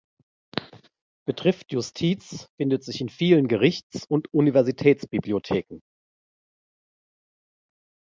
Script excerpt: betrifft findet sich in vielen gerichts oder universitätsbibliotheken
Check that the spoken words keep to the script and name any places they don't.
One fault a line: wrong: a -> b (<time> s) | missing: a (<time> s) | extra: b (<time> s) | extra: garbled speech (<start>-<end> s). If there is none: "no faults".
extra: justiz (1.7 s)
wrong: oder -> und (4.1 s)